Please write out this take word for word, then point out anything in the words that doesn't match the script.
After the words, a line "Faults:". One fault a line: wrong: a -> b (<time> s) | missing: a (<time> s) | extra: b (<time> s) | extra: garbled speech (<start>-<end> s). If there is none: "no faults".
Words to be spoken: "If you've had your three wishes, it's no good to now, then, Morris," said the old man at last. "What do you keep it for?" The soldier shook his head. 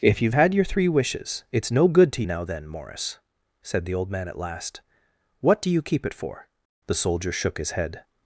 "If you've had your three wishes, it's no good to now, then, Morris," said the old man at last. "What do you keep it for?" The soldier shook his head.
Faults:
no faults